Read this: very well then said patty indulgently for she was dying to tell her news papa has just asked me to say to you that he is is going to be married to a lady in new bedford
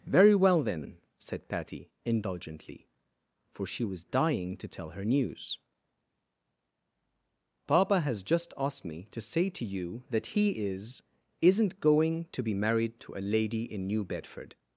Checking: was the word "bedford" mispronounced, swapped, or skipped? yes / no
no